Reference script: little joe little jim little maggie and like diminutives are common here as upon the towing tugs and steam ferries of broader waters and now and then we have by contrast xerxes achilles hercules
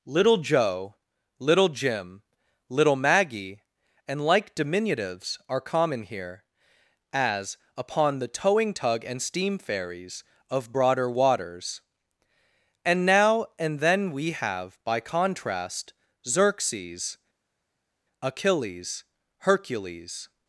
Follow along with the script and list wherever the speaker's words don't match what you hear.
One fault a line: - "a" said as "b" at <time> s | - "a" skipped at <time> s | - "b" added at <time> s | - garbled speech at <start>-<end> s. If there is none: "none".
- "tugs" said as "tug" at 8.7 s